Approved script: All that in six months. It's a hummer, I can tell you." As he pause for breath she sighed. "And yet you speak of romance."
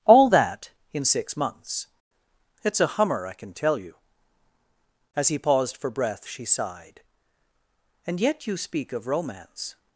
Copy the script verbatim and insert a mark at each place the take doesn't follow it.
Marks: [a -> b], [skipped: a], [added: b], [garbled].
All that in six months. It's a hummer, I can tell you." As he [pause -> paused] for breath she sighed. "And yet you speak of romance."